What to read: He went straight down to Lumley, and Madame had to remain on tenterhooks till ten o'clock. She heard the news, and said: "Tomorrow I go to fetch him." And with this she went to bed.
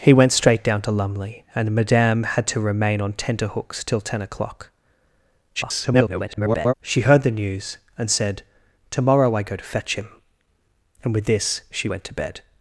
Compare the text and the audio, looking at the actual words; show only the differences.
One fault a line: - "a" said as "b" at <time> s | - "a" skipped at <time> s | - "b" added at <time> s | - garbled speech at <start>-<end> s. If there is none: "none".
- garbled speech at 5.5-6.7 s